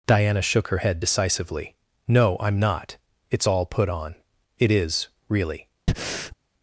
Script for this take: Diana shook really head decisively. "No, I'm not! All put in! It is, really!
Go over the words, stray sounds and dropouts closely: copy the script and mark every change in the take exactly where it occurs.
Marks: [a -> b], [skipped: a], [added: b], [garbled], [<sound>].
Diana shook [really -> her] head decisively. "No, I'm not! [added: It's] All put [in! -> on] It is, really! [breath]